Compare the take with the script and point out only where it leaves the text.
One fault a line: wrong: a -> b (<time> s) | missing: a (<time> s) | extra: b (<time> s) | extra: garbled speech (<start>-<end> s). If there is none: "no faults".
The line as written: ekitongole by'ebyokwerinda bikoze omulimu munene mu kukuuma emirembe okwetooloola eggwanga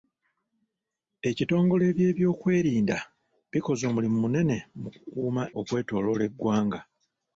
missing: emirembe (5.4 s)